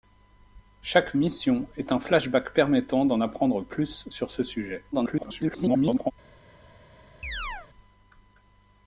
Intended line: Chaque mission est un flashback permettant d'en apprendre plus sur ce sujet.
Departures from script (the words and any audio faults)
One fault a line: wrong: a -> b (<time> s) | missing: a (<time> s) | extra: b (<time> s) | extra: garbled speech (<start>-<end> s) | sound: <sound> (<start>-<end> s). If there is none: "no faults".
extra: garbled speech (4.9-6.1 s)
sound: chirp (7.2-7.7 s)